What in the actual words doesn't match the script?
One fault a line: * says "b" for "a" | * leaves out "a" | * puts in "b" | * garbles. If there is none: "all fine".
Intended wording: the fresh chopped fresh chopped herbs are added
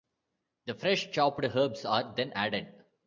* leaves out "fresh chopped"
* puts in "then"